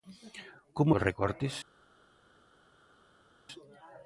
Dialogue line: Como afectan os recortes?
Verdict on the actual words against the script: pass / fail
fail